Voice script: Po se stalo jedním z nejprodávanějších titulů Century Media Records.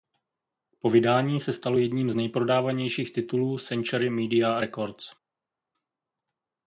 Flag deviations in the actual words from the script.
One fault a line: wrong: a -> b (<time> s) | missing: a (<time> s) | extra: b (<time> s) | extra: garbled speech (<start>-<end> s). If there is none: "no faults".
extra: vydání (0.9 s)